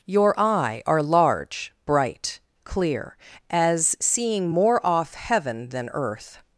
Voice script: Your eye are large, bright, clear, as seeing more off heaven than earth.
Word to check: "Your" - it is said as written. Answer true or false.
true